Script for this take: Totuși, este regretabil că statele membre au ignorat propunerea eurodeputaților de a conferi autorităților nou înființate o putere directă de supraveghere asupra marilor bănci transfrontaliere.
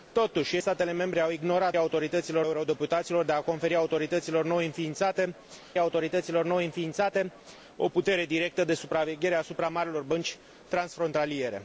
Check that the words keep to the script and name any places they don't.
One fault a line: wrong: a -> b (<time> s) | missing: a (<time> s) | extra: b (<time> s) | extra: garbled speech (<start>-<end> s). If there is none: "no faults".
missing: este regretabil că (0.6 s)
wrong: propunerea -> autorităților (1.8 s)
extra: autorităților nou înființate (5.8 s)